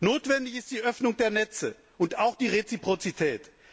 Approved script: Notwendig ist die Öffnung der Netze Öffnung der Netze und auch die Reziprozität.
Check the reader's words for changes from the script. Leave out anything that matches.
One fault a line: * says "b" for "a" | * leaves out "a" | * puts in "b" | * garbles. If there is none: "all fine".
* leaves out "Öffnung der Netze"